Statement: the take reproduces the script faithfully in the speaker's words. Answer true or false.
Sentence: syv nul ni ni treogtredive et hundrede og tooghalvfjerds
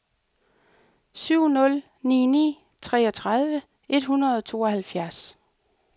true